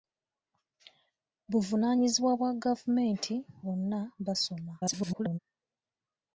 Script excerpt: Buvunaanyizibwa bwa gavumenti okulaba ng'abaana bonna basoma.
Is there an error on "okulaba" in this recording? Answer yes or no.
yes